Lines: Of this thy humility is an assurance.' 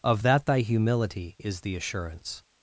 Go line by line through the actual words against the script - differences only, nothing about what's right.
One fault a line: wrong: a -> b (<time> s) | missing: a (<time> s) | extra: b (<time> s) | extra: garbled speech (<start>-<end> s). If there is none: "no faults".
wrong: this -> that (0.2 s)
wrong: an -> the (1.6 s)